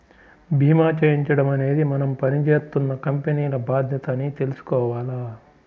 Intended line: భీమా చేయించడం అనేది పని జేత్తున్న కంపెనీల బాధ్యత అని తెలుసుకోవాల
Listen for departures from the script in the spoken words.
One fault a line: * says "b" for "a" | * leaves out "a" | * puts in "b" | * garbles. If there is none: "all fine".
* puts in "మనం"